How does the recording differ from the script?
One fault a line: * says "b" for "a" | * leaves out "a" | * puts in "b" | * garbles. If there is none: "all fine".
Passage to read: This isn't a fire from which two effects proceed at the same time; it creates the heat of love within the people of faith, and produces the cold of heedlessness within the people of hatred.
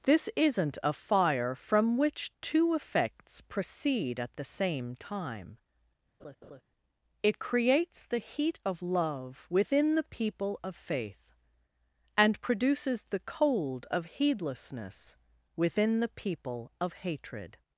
all fine